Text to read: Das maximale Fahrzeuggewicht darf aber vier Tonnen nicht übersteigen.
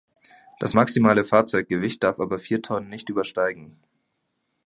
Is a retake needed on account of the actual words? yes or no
no